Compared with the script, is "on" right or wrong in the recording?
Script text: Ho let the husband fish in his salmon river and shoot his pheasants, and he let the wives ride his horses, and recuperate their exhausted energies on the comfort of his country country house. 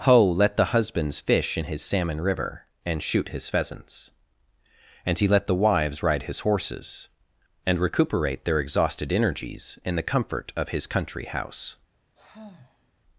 wrong